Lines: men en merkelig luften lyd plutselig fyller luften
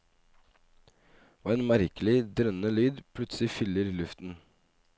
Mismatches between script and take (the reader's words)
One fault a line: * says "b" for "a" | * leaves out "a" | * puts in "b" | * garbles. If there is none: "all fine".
* says "og" for "men"
* says "drønnende" for "luften"